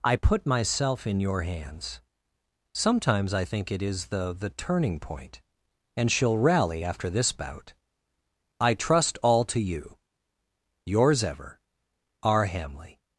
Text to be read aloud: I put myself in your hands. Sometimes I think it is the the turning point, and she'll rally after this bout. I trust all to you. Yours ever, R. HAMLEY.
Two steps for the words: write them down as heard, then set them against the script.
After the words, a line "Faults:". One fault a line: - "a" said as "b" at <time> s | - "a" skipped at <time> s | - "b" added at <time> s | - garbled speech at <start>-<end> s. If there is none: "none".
I put myself in your hands. Sometimes I think it is the the turning point, and she'll rally after this bout. I trust all to you. Yours ever, R. HAMLEY.
Faults:
none